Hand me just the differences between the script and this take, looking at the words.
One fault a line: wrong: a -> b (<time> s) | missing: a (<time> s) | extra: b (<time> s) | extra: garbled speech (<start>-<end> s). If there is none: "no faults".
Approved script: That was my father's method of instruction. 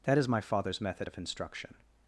wrong: was -> is (0.2 s)